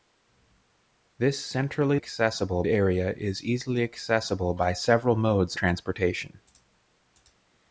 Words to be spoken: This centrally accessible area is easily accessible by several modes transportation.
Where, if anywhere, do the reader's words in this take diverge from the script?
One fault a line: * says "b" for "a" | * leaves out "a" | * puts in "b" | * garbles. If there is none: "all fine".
all fine